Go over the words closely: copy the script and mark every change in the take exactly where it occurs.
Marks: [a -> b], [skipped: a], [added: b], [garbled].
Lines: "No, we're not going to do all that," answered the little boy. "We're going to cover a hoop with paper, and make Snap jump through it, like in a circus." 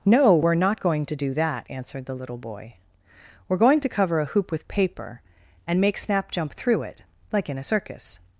"No, we're not going to do [skipped: all] that," answered the little boy. "We're going to cover a hoop with paper, and make Snap jump through it, like in a circus."